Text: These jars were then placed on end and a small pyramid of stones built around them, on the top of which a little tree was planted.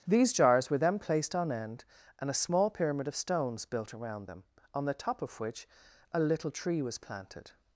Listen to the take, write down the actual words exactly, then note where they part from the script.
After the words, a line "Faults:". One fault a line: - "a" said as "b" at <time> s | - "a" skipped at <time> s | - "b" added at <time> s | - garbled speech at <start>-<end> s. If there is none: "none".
These jars were then placed on end and a small pyramid of stones built around them, on the top of which a little tree was planted.
Faults:
none